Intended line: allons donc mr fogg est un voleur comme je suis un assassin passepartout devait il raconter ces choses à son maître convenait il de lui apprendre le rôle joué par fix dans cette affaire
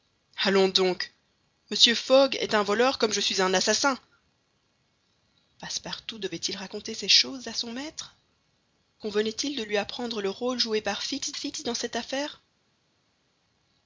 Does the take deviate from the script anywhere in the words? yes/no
yes